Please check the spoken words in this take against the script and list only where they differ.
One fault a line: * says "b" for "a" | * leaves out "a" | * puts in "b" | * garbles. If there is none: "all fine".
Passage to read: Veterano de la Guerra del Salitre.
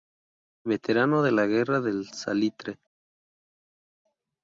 all fine